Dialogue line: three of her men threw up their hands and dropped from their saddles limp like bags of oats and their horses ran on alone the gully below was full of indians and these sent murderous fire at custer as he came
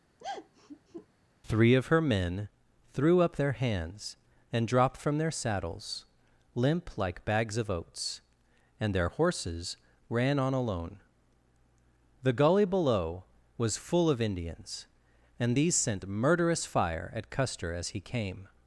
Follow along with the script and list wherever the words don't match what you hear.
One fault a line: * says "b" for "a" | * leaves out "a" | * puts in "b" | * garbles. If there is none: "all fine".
all fine